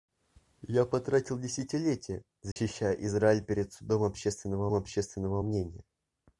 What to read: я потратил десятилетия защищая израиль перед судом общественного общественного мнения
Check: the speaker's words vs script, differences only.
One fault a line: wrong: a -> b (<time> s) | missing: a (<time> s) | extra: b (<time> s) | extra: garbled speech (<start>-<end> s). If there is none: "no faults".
no faults